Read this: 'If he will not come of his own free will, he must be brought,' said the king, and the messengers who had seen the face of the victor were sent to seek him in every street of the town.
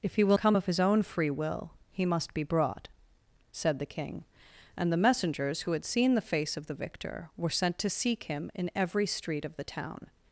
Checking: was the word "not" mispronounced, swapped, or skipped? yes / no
yes